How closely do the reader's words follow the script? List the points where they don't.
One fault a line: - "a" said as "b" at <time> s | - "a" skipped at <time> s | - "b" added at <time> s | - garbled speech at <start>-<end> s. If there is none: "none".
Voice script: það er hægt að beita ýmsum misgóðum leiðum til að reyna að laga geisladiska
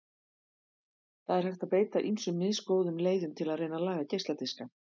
none